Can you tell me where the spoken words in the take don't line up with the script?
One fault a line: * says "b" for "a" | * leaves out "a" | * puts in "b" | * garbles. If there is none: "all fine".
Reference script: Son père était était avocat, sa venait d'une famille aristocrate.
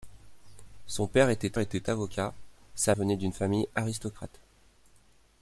all fine